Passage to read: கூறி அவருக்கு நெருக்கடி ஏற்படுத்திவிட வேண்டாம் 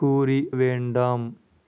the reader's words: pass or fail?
fail